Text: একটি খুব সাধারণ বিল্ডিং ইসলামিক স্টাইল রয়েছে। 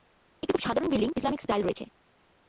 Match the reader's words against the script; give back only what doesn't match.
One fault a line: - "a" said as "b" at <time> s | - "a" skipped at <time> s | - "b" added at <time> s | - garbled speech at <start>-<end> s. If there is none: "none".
none